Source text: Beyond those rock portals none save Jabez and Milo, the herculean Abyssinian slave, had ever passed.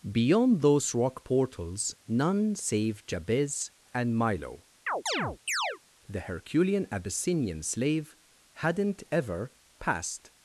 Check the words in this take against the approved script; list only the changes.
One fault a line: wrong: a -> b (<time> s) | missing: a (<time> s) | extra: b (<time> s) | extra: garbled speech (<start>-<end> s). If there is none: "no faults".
wrong: had -> hadn't (8.5 s)